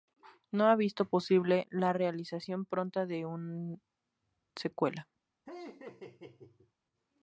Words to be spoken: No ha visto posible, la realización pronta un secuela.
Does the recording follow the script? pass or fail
fail